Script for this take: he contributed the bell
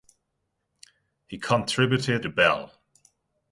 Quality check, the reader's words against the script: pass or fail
pass